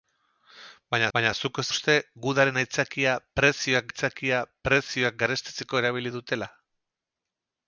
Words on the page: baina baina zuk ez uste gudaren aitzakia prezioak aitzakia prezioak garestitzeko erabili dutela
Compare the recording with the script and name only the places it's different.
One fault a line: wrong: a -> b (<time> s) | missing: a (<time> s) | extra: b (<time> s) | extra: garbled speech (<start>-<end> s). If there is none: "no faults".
no faults